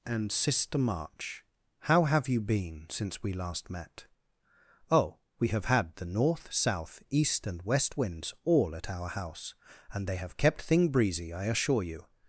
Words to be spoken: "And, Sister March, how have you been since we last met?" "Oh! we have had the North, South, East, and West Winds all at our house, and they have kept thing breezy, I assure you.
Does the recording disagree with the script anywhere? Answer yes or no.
no